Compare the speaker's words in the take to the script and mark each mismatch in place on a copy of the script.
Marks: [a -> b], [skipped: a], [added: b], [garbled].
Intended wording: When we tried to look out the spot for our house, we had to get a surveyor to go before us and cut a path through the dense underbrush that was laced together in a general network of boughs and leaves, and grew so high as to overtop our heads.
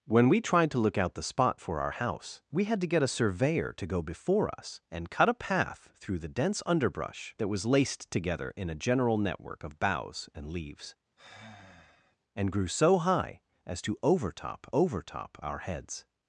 When we tried to look out the spot for our house, we had to get a surveyor to go before us and cut a path through the dense underbrush that was laced together in a general network of boughs and leaves, and grew so high as to overtop [added: overtop] our heads.